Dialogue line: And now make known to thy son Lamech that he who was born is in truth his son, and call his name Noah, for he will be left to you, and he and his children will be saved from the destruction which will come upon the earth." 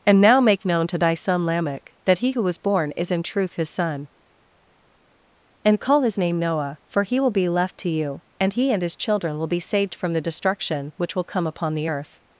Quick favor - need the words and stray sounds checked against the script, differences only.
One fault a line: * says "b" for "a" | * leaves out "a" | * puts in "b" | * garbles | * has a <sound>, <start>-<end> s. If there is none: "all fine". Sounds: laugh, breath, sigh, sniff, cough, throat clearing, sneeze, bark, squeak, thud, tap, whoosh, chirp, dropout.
all fine